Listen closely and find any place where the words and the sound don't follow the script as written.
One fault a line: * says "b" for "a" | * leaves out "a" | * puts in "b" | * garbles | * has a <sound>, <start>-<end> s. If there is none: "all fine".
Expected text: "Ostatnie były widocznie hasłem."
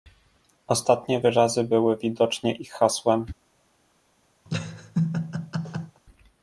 * puts in "wyrazy"
* puts in "ich"
* has a laugh, 4.5-6.0 s